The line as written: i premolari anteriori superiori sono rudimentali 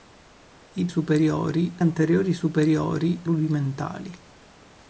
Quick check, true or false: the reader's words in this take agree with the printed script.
false